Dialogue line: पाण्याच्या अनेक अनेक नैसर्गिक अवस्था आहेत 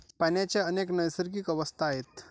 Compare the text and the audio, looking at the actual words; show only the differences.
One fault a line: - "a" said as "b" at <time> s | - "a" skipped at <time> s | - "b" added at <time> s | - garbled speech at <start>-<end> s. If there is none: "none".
- "अनेक" skipped at 0.9 s